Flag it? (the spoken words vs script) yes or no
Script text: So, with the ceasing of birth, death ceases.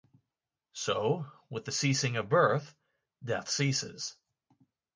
no